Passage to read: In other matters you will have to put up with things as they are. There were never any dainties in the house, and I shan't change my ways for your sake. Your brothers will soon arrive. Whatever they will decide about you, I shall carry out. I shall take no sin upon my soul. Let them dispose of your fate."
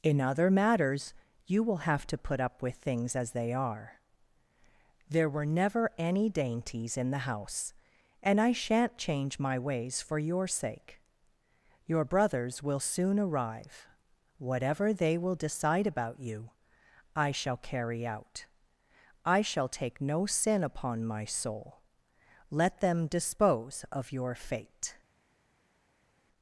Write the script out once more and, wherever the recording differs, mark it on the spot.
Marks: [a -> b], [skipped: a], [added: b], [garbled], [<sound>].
In other matters you will have to put up with things as they are. There were never any dainties in the house, and I shan't change my ways for your sake. Your brothers will soon arrive. Whatever they will decide about you, I shall carry out. I shall take no sin upon my soul. Let them dispose of your fate."